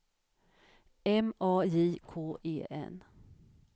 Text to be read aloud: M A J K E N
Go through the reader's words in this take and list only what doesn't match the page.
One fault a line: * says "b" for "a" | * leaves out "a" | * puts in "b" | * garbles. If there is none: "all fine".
all fine